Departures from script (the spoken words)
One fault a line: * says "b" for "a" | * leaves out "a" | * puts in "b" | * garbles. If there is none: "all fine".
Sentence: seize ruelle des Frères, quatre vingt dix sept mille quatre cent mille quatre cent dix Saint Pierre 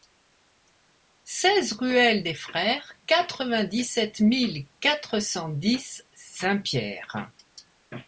* leaves out "mille quatre cent"